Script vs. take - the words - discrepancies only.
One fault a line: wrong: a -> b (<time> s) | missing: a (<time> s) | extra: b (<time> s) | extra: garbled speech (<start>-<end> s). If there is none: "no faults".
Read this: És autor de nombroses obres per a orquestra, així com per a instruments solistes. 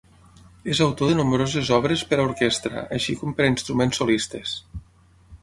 no faults